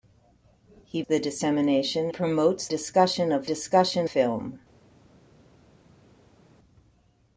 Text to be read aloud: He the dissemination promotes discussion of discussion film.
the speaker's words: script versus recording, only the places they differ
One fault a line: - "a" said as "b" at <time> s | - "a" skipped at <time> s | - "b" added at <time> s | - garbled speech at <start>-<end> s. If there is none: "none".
none